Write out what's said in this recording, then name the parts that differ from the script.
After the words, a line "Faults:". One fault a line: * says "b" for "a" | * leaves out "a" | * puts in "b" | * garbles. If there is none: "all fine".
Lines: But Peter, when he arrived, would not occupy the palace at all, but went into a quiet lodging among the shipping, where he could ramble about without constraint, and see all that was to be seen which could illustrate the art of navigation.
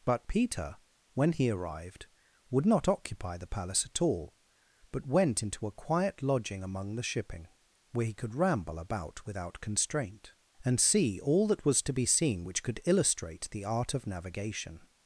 But Peter, when he arrived, would not occupy the palace at all, but went into a quiet lodging among the shipping, where he could ramble about without constraint, and see all that was to be seen which could illustrate the art of navigation.
Faults:
all fine